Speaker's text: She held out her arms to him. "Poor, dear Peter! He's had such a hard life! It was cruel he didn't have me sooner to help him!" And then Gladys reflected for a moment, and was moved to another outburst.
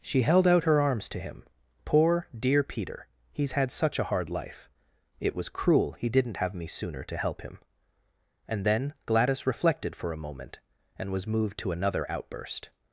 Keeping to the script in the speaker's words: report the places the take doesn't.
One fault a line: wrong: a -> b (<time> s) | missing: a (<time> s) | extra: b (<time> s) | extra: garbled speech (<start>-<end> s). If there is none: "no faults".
no faults